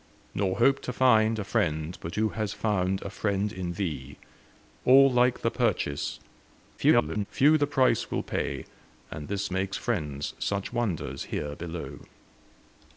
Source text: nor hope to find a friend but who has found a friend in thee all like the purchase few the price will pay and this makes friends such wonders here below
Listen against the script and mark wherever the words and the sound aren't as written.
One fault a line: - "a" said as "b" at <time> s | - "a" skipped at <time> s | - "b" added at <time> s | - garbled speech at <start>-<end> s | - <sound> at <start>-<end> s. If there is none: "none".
- garbled speech at 6.8-7.3 s